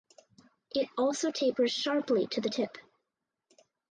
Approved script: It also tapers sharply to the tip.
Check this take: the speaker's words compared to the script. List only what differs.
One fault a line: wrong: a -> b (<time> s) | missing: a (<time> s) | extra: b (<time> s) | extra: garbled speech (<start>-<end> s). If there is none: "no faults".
no faults